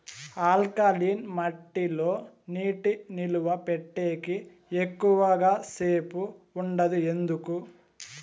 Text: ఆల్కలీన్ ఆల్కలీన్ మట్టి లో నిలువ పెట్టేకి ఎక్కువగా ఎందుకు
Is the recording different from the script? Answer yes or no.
yes